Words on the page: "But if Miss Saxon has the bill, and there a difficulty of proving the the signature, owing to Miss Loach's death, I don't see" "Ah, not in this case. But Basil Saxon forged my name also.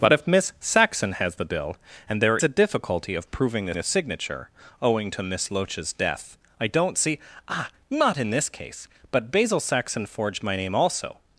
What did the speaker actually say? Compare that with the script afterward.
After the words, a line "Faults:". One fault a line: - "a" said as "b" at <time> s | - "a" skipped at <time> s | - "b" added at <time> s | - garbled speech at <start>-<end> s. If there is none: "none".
"But if Miss Saxon has the bill, and there a difficulty of proving the the signature, owing to Miss Loach's death, I don't see" "Ah, not in this case. But Basil Saxon forged my name also.
Faults:
none